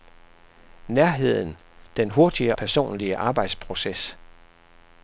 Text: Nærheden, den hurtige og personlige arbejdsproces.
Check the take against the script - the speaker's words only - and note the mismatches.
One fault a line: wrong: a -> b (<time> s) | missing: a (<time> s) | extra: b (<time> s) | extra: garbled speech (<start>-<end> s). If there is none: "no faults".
missing: og (2.6 s)